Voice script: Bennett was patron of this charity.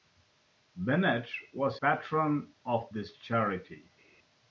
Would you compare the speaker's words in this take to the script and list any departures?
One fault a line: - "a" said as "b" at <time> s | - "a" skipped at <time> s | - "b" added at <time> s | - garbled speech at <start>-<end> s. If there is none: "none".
none